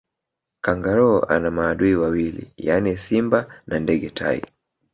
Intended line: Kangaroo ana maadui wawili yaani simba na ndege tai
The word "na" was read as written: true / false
true